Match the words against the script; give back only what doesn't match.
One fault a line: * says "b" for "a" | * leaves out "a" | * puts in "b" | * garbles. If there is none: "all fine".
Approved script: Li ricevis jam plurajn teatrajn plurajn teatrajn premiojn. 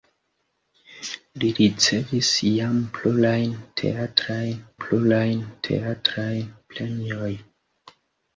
all fine